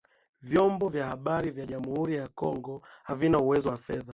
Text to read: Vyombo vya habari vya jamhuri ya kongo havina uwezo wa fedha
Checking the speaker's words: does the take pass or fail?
pass